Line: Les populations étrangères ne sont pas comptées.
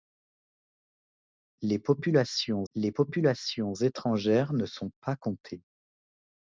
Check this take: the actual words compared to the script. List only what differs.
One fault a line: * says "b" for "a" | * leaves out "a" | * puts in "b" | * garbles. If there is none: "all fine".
* puts in "les populations"